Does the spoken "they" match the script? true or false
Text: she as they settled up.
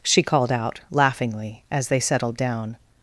true